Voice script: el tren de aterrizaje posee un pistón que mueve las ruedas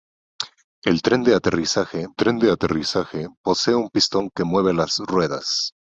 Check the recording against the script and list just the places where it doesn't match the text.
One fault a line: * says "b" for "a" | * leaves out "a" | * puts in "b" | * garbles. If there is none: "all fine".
* puts in "tren de aterrizaje"